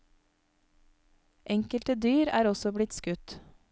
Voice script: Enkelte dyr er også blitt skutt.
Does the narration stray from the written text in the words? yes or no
no